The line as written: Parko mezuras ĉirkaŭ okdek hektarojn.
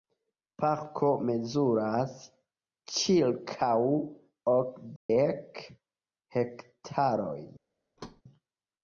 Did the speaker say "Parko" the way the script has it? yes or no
yes